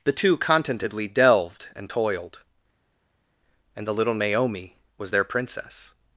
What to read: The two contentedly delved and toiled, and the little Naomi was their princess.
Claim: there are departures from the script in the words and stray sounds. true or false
false